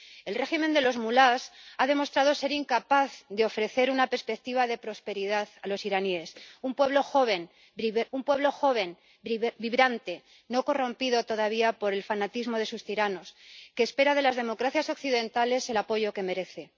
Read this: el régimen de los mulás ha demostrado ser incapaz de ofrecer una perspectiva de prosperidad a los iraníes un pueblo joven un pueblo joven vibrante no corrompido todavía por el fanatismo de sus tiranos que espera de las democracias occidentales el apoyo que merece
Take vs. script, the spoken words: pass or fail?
pass